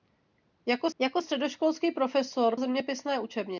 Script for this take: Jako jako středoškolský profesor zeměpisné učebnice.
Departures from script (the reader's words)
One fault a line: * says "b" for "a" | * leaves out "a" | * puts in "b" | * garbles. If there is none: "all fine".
all fine